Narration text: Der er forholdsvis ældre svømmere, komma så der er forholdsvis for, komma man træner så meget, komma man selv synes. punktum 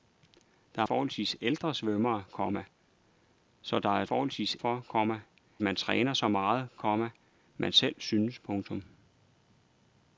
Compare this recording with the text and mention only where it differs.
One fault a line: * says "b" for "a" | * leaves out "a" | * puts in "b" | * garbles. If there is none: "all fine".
all fine